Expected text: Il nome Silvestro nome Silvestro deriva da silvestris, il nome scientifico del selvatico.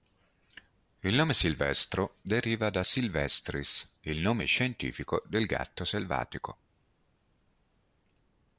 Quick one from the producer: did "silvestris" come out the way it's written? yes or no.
yes